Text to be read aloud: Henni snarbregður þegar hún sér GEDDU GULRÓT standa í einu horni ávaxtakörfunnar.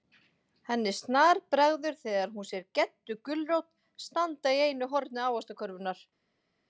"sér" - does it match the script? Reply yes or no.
yes